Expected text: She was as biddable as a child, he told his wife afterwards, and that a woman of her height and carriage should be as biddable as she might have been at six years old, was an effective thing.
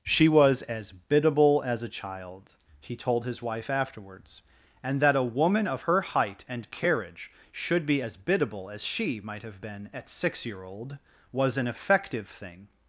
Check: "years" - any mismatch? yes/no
yes